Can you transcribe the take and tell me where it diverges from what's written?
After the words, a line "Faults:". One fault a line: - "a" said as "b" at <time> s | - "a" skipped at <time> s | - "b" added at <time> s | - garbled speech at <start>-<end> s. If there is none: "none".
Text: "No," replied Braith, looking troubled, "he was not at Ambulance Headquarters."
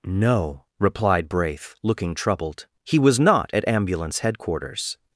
"No," replied Braith, looking troubled, "he was not at Ambulance Headquarters."
Faults:
none